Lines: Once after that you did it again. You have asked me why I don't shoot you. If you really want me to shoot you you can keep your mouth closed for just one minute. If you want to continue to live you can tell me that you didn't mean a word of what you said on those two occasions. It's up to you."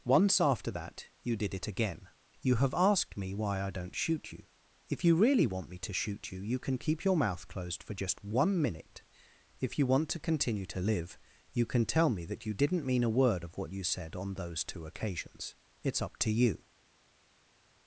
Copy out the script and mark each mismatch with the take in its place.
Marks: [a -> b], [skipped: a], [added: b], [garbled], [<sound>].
Once after that you did it again. You have asked me why I don't shoot you. If you really want me to shoot you you can keep your mouth closed for just one minute. If you want to continue to live you can tell me that you didn't mean a word of what you said on those two occasions. It's up to you."